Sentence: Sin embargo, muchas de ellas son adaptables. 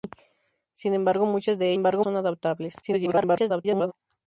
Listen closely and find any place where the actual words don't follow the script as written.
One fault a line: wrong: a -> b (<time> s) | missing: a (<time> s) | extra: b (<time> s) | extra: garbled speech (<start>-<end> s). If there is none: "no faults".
wrong: ellas -> embargo (1.7 s)
extra: garbled speech (2.8-3.9 s)